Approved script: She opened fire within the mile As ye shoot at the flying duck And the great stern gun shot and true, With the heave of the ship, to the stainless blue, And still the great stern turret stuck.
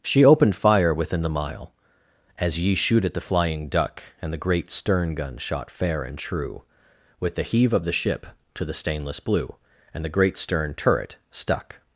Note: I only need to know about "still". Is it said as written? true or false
false